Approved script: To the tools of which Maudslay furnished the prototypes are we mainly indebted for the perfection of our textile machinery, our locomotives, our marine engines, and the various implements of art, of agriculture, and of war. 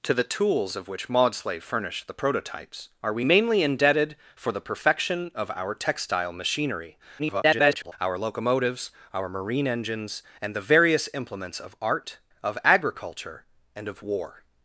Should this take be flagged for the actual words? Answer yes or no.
yes